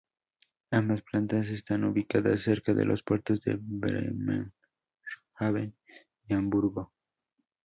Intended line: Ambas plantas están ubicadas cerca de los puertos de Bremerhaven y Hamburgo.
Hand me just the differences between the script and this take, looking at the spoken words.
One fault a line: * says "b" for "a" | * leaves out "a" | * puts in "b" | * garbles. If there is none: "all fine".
all fine